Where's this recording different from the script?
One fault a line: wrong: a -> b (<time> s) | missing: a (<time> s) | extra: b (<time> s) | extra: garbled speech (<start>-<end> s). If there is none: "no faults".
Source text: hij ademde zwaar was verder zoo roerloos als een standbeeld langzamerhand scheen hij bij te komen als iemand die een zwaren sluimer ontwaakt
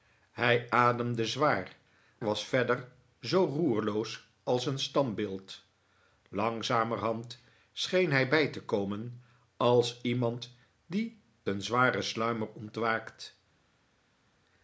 no faults